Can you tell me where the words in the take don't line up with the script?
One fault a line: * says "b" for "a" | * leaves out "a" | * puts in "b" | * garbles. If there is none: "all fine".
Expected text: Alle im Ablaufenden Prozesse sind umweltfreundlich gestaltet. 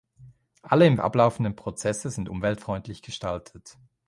all fine